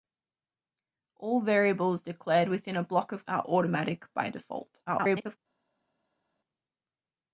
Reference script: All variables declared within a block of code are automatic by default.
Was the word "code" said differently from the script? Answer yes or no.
yes